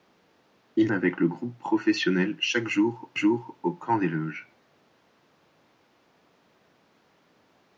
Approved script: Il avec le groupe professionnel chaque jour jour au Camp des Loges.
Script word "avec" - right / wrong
right